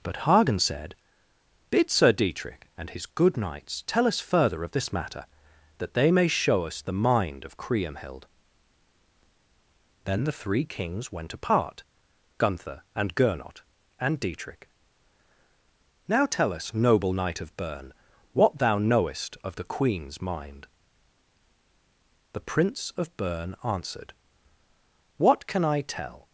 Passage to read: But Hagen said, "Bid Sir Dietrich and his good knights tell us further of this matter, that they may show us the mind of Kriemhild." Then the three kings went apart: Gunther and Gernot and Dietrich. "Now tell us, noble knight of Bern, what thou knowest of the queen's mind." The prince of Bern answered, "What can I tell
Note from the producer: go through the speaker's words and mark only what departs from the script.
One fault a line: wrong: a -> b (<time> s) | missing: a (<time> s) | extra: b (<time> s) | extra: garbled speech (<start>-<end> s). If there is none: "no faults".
no faults